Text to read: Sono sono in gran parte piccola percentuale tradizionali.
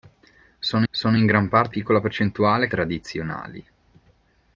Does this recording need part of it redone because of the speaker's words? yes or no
no